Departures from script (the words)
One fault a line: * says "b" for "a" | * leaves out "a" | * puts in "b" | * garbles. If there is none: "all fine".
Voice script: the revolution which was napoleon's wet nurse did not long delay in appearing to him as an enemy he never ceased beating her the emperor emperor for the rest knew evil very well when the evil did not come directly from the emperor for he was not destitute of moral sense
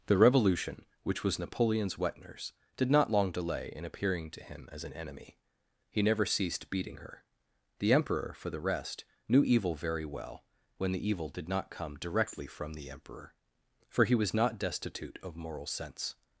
* leaves out "emperor"